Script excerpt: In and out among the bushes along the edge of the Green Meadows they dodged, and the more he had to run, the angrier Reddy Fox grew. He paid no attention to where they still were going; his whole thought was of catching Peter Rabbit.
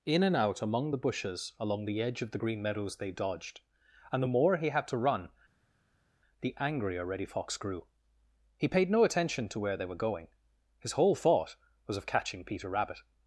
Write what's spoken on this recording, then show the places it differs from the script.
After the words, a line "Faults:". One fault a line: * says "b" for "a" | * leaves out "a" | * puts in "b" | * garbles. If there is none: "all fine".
In and out among the bushes along the edge of the Green Meadows they dodged, and the more he had to run, the angrier Reddy Fox grew. He paid no attention to where they were going; his whole thought was of catching Peter Rabbit.
Faults:
* leaves out "still"